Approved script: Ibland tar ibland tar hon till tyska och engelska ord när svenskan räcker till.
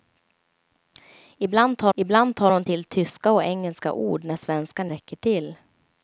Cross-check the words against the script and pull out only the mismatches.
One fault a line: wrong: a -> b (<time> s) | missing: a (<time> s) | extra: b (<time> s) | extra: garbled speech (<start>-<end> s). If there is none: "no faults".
no faults